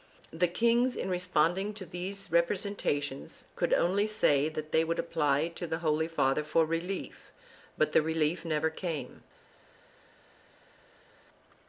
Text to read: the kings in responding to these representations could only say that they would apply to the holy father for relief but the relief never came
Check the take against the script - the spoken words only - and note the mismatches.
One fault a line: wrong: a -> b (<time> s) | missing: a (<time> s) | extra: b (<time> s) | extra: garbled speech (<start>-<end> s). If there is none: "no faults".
no faults